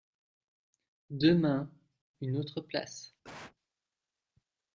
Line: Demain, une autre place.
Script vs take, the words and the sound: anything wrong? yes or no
yes